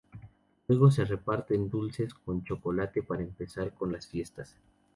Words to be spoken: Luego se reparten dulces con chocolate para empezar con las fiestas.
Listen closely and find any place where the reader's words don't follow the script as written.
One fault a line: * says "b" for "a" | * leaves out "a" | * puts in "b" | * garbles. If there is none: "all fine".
all fine